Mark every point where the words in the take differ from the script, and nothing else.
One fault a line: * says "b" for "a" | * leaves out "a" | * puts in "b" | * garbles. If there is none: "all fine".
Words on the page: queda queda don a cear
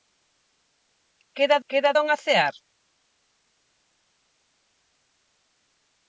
all fine